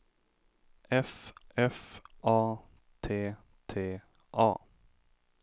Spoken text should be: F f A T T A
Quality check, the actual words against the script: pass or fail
pass